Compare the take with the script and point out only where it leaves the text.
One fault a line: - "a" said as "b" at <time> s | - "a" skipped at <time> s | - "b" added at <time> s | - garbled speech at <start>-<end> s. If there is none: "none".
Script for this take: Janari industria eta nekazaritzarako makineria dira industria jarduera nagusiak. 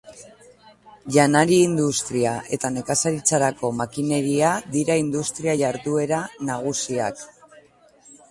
none